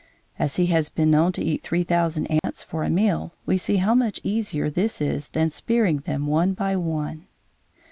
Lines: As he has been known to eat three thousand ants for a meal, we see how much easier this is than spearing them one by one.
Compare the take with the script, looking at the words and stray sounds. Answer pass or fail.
fail